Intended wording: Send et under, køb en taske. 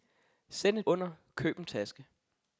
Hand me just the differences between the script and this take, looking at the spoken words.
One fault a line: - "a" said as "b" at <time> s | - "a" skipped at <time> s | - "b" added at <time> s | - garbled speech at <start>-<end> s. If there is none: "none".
none